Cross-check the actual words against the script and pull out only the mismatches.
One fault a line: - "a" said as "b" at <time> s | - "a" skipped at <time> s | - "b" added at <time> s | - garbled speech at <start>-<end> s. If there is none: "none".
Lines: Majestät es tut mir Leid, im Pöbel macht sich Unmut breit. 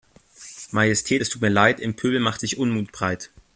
none